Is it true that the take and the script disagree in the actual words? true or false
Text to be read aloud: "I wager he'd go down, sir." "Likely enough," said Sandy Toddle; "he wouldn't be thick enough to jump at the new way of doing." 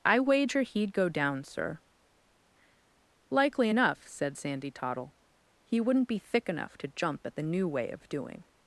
false